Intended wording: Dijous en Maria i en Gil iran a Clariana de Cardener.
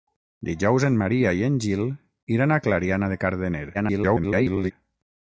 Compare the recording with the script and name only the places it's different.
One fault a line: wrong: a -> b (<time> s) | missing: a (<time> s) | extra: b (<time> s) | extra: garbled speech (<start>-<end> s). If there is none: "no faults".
extra: garbled speech (3.7-4.7 s)